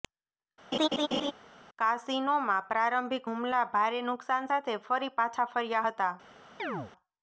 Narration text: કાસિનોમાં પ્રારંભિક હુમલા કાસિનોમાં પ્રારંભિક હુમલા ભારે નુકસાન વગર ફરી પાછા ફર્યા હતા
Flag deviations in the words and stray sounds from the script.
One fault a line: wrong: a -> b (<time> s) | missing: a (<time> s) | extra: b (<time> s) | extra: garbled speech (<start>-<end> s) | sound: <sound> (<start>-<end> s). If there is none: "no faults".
sound: laugh (0.7-1.3 s)
missing: કાસિનોમાં પ્રારંભિક હુમલા (3.6 s)
wrong: વગર -> સાથે (4.5 s)
sound: chirp (6.6-6.9 s)